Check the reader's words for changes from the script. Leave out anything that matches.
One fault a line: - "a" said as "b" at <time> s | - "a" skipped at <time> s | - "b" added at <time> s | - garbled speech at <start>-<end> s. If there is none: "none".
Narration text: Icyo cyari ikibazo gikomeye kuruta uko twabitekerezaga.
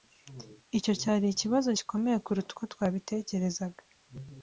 none